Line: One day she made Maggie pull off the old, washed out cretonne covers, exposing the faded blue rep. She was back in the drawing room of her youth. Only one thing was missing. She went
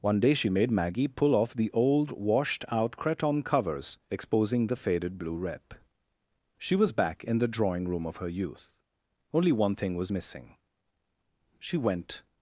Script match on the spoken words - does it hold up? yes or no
yes